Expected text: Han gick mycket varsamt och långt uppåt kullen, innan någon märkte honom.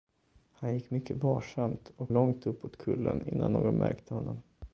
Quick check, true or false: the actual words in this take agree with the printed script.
true